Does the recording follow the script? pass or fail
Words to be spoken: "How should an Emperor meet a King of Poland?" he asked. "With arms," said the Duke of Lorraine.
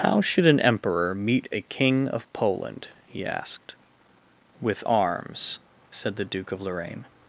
pass